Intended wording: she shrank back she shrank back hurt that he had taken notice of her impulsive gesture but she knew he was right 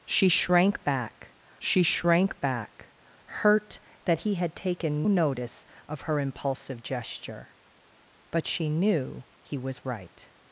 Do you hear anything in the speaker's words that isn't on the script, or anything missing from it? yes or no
no